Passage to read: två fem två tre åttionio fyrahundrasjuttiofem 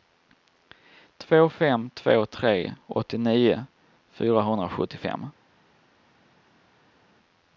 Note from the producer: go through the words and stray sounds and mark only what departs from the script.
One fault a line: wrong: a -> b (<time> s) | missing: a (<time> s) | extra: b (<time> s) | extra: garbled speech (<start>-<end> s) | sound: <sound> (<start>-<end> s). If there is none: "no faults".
no faults